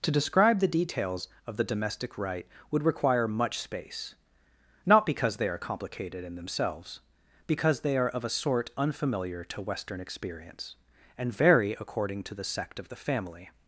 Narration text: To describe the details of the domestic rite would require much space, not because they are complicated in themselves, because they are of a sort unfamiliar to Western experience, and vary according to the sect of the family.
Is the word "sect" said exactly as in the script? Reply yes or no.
yes